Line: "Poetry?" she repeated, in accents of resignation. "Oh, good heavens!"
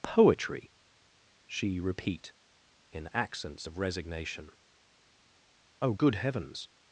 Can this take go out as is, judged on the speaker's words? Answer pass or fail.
fail